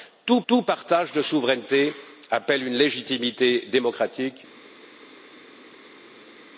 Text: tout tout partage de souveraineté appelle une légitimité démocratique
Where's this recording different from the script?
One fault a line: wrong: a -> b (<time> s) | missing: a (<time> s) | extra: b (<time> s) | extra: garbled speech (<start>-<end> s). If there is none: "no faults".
no faults